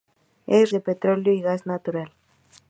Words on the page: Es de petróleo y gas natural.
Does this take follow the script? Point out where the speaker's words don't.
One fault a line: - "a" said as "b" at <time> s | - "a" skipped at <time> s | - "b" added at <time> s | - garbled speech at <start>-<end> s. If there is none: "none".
none